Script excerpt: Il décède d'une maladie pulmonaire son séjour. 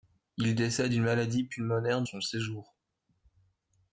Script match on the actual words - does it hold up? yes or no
yes